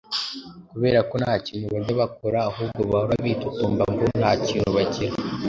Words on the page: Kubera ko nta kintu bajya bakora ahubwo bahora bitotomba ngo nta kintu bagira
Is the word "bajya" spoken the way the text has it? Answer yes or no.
yes